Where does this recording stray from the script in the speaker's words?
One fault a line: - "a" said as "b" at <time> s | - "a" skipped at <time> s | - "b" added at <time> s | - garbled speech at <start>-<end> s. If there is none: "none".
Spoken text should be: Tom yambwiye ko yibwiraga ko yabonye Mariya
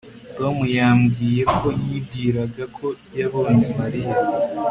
none